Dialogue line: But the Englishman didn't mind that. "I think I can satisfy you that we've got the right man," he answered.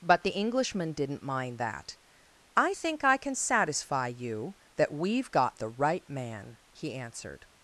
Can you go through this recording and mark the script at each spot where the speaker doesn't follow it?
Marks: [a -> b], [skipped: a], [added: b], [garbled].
But the Englishman didn't mind that. "I think I can satisfy you that we've got the right man," he answered.